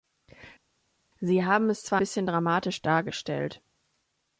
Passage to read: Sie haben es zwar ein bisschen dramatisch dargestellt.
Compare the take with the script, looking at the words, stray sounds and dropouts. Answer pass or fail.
fail